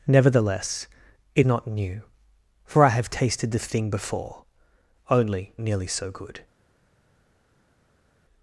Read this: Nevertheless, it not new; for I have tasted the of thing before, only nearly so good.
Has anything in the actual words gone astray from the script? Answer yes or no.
no